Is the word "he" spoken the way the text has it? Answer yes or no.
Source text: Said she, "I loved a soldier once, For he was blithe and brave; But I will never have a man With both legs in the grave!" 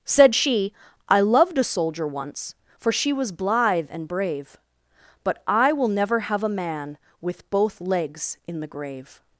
no